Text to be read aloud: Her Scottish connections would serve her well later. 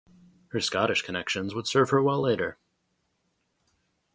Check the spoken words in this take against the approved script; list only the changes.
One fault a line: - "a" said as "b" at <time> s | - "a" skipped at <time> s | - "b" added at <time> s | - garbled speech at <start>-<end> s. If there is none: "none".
none